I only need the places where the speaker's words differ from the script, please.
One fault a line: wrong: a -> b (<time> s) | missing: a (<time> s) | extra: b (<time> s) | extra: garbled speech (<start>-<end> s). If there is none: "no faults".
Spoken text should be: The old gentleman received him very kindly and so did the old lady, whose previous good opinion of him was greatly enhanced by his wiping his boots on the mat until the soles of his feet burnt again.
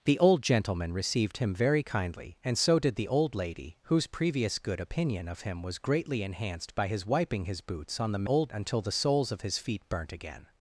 wrong: mat -> old (8.2 s)